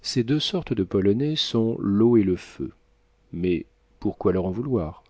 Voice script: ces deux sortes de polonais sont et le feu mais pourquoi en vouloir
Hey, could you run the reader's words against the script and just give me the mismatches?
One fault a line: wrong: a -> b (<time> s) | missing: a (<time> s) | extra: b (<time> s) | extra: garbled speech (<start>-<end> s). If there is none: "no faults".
extra: l'eau (1.8 s)
extra: leur (4.3 s)